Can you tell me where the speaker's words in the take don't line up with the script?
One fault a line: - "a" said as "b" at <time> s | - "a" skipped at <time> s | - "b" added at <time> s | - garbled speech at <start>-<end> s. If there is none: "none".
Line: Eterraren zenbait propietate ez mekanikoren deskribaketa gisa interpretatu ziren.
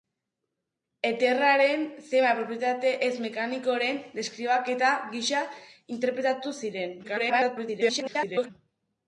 - garbled speech at 7.0-8.5 s